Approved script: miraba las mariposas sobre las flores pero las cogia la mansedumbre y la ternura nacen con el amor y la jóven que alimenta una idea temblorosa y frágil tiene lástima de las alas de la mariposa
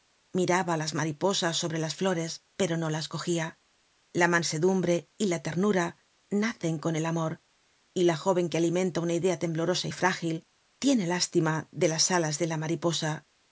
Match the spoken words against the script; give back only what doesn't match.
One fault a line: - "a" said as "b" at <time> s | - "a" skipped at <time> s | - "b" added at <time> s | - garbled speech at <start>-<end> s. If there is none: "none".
- "no" added at 2.8 s